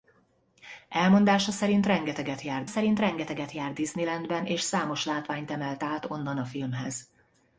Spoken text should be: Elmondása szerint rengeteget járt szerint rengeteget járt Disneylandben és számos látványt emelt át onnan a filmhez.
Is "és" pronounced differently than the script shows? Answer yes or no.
no